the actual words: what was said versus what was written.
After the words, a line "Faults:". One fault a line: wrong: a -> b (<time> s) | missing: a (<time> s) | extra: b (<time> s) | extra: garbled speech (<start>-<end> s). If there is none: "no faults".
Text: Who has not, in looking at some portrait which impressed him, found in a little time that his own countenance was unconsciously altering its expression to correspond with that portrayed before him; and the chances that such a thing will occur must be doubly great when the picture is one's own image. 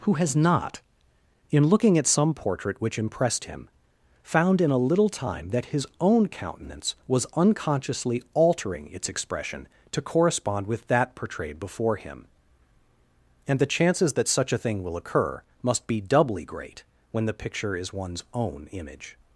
Who has not, in looking at some portrait which impressed him, found in a little time that his own countenance was unconsciously altering its expression to correspond with that portrayed before him; and the chances that such a thing will occur must be doubly great when the picture is one's own image.
Faults:
no faults